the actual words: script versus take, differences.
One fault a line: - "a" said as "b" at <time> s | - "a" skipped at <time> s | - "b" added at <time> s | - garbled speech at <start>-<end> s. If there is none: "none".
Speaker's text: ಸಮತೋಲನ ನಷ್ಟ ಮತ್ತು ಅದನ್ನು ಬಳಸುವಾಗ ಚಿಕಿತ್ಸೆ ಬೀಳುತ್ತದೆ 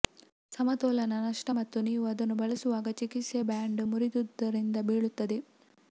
- "ನೀವು" added at 1.9 s
- "ಬ್ಯಾಂಡ್ ಮುರಿದುದರಿಂದ" added at 3.5 s